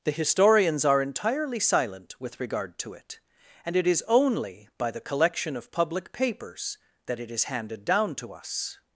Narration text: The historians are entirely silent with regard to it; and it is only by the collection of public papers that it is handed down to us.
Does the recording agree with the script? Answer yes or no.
yes